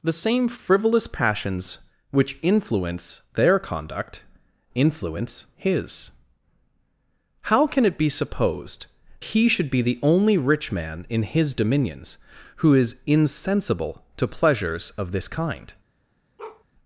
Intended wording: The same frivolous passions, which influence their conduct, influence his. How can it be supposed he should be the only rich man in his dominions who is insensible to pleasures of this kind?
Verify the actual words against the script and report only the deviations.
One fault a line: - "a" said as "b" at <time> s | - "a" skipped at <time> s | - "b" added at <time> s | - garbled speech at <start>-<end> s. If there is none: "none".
none